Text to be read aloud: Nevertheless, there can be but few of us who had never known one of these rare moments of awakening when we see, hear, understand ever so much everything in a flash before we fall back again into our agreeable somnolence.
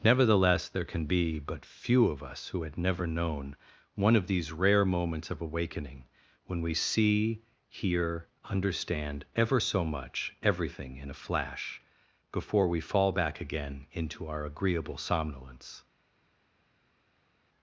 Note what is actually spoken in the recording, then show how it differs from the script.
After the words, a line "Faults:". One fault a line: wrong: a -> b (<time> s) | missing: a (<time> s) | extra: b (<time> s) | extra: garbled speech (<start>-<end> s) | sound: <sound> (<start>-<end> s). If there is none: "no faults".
Nevertheless, there can be but few of us who had never known one of these rare moments of awakening when we see, hear, understand ever so much everything in a flash before we fall back again into our agreeable somnolence.
Faults:
no faults